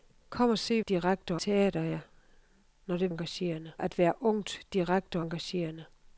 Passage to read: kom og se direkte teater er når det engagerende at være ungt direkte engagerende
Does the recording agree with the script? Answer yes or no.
yes